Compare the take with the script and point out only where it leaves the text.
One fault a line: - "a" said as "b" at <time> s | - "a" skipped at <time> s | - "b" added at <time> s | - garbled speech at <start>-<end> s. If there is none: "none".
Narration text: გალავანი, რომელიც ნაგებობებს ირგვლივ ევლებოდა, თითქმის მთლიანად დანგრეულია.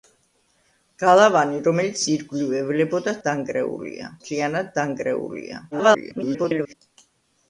- "ნაგებობებს" skipped at 2.0 s
- "თითქმის" said as "დანგრეულია" at 3.3 s
- garbled speech at 5.7-6.7 s